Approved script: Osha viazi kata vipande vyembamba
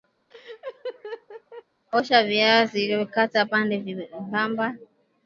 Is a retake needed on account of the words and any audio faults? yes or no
yes